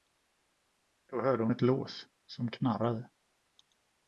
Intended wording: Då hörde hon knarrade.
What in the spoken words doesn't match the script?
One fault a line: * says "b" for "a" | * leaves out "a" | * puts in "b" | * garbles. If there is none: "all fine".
* puts in "ett lås som"